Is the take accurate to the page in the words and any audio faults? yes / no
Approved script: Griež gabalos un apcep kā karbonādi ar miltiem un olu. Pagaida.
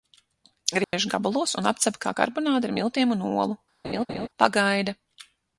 no